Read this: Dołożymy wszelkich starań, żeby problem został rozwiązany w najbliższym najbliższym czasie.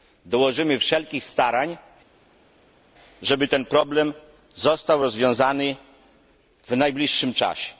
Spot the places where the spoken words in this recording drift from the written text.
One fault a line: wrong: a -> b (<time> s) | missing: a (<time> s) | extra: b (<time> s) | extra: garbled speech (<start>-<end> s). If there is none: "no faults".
extra: ten (3.5 s)
missing: najbliższym (7.3 s)